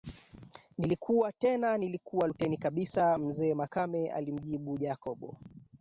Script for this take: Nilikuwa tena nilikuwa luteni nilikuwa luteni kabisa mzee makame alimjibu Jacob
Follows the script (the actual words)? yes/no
no